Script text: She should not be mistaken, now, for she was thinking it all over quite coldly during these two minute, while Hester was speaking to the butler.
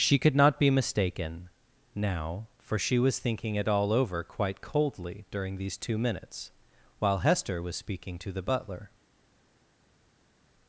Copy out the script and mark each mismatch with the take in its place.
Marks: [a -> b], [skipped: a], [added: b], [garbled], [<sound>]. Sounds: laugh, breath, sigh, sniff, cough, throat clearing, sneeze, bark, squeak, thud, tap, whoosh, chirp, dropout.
She [should -> could] not be mistaken, now, for she was thinking it all over quite coldly during these two [minute, -> minutes] while Hester was speaking to the butler.